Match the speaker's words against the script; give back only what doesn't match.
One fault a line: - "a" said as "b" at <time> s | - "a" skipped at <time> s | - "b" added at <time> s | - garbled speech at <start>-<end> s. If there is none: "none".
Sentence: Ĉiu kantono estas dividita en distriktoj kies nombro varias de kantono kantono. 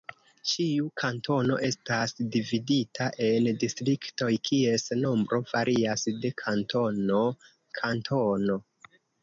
none